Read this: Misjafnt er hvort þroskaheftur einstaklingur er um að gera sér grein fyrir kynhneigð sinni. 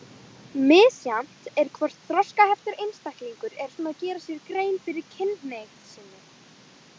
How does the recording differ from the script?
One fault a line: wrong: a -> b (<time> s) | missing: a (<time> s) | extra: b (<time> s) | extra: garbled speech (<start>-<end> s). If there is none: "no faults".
no faults